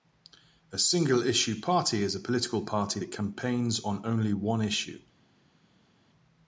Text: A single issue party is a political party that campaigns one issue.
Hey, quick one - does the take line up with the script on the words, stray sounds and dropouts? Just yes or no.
no